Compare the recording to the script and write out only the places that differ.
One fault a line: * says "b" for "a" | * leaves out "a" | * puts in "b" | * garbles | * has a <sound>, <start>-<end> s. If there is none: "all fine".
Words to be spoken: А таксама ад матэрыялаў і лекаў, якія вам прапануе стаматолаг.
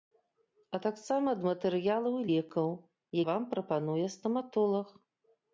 * leaves out "якія"